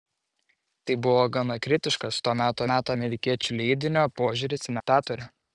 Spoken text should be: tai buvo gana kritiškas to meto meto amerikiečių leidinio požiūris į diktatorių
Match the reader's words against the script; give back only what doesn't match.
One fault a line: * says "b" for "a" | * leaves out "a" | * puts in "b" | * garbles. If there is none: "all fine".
all fine